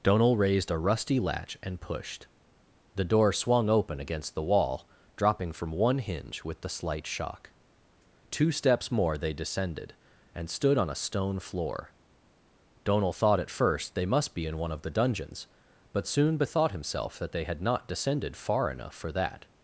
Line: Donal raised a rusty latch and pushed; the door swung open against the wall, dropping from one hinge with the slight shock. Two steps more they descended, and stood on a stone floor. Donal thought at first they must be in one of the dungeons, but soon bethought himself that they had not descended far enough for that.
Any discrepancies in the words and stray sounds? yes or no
no